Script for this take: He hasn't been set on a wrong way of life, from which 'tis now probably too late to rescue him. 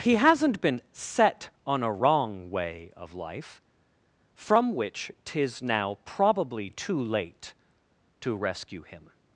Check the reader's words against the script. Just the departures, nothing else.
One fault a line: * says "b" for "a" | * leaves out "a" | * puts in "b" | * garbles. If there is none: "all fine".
all fine